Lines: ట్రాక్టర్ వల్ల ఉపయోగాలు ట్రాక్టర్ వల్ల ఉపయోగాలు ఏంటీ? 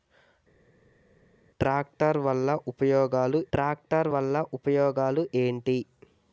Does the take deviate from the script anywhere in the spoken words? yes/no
no